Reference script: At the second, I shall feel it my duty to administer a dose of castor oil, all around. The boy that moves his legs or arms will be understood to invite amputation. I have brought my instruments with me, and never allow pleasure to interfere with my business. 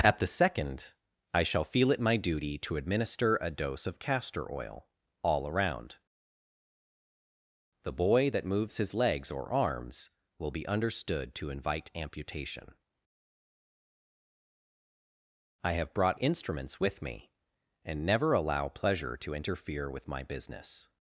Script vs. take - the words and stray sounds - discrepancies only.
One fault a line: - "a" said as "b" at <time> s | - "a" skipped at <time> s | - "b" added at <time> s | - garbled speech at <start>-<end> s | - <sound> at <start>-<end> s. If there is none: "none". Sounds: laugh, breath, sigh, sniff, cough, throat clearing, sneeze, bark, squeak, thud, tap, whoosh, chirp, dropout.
- "my" skipped at 16.2 s